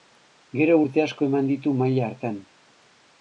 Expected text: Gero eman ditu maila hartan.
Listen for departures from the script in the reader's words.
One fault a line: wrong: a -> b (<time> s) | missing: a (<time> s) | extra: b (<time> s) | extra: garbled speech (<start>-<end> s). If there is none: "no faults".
extra: urte asko (0.8 s)